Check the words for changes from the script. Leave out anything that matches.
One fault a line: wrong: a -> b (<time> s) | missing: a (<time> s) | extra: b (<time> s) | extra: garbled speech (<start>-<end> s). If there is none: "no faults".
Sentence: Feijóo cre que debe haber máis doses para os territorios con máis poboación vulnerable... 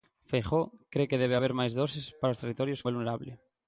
missing: con máis poboación (2.8 s)